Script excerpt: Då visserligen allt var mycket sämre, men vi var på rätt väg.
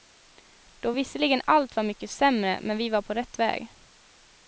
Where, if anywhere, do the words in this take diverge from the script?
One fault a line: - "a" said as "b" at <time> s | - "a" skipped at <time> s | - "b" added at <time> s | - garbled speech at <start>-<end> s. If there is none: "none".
none